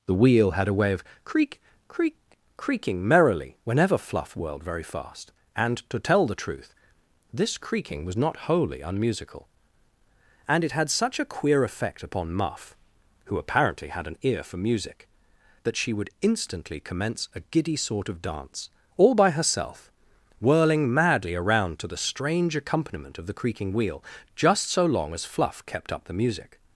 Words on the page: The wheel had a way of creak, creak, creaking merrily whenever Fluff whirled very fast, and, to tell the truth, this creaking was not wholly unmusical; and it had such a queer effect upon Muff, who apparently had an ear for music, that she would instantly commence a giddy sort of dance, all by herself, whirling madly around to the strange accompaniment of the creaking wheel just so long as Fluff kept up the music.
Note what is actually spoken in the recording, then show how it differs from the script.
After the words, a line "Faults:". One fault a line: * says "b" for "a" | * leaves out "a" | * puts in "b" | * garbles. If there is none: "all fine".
The wheel had a way of creak, creak, creaking merrily whenever Fluff whirled very fast, and, to tell the truth, this creaking was not wholly unmusical; and it had such a queer effect upon Muff, who apparently had an ear for music, that she would instantly commence a giddy sort of dance, all by herself, whirling madly around to the strange accompaniment of the creaking wheel just so long as Fluff kept up the music.
Faults:
all fine